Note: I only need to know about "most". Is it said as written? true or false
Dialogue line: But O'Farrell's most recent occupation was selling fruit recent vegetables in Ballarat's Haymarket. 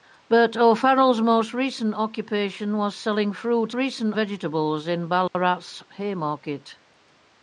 true